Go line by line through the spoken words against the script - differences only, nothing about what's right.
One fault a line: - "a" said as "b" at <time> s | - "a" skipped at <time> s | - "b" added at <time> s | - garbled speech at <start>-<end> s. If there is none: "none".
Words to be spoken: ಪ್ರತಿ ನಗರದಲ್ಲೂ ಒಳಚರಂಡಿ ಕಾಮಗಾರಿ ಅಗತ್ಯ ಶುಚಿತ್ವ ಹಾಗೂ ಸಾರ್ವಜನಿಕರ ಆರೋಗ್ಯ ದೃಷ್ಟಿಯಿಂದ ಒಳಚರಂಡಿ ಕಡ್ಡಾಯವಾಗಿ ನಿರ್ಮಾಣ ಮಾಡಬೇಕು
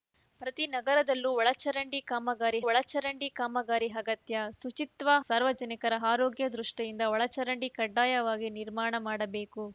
- "ಒಳಚರಂಡಿ ಕಾಮಗಾರಿ" added at 2.7 s
- "ಹಾಗೂ" skipped at 5.2 s